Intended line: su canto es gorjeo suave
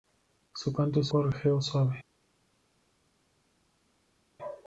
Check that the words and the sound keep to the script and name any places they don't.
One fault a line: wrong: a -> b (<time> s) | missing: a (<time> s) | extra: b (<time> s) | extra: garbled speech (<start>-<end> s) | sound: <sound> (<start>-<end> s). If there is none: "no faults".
no faults